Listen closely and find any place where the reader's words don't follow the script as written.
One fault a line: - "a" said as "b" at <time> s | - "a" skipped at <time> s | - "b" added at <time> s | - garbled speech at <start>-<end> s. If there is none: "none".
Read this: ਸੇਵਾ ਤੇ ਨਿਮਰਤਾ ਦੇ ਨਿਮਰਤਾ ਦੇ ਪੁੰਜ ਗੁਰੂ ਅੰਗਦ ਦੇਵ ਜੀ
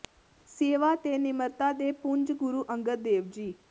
- "ਨਿਮਰਤਾ ਦੇ" skipped at 1.9 s